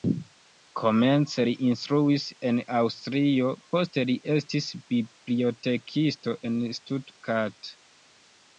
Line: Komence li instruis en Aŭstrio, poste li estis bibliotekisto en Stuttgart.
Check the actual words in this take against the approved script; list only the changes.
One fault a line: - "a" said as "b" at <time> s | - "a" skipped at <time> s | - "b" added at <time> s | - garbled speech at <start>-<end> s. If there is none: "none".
none